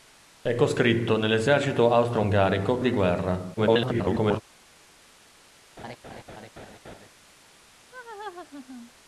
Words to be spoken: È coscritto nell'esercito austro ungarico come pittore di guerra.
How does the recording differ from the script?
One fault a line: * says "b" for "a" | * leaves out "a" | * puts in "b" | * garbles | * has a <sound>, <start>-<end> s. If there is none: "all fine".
* leaves out "come pittore"
* garbles
* has a laugh, 5.8-7.1 s
* has a laugh, 7.9-8.9 s